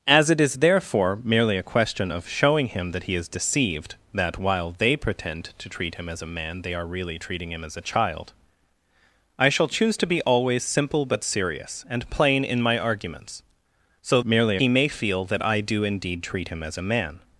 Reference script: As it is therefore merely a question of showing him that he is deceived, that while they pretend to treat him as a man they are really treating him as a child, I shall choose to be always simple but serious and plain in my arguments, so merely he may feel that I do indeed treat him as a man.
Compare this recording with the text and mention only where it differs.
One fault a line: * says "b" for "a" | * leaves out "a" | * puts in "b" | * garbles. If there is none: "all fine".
all fine